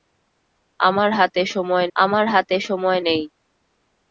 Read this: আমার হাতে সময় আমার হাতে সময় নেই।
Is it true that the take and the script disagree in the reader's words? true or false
false